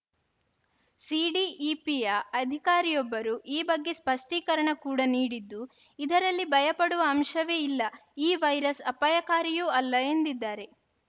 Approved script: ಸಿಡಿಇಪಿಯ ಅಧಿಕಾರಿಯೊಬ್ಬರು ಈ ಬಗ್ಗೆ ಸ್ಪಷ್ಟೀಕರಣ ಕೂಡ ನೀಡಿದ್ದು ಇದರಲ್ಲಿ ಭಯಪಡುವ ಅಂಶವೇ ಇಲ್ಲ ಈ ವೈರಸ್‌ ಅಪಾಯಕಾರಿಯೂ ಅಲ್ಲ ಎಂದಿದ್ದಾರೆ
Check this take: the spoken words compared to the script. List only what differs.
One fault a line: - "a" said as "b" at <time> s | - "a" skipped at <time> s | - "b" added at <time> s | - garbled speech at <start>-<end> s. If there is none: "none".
none